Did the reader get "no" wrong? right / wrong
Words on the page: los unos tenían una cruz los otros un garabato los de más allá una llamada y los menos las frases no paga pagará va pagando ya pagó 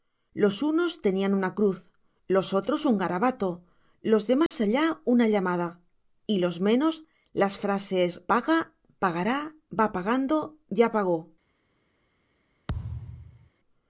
wrong